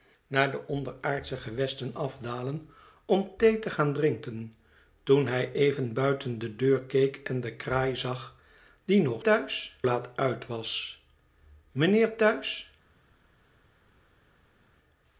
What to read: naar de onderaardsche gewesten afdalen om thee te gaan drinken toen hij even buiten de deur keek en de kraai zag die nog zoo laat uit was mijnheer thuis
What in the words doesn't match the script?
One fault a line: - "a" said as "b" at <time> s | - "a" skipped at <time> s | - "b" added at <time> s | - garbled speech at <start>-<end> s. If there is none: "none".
- "zoo" said as "thuis" at 9.2 s